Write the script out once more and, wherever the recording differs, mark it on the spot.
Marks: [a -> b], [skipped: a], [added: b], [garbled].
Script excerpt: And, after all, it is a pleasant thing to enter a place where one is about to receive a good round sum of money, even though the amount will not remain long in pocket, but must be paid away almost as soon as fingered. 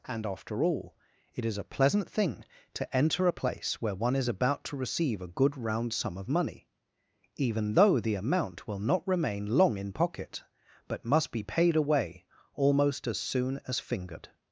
And, after all, it is a pleasant thing to enter a place where one is about to receive a good round sum of money, even though the amount will not remain long in pocket, but must be paid away almost as soon as fingered.